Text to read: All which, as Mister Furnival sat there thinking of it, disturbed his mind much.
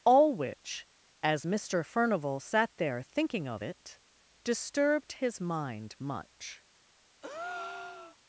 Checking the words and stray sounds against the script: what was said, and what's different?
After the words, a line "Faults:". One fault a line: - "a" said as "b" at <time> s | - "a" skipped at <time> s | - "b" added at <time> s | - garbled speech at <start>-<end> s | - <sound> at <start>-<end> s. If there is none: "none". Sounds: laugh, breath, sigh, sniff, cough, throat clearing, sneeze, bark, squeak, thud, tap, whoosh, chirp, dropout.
All which, as Mister Furnival sat there thinking of it, disturbed his mind much.
Faults:
- breath at 7.2-8.2 s